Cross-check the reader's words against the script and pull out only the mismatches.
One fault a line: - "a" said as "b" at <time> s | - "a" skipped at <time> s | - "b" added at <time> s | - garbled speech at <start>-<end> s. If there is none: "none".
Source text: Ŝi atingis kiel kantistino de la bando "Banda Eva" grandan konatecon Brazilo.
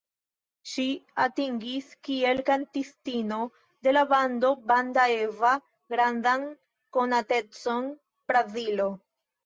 none